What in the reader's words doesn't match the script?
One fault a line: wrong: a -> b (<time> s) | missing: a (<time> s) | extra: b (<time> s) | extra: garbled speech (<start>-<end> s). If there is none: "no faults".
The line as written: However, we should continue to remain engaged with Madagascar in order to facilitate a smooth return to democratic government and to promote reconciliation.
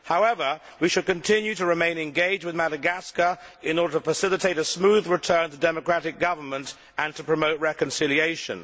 no faults